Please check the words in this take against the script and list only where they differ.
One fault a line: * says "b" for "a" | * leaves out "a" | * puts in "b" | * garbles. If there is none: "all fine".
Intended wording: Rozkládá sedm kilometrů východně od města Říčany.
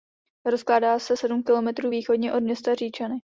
* puts in "se"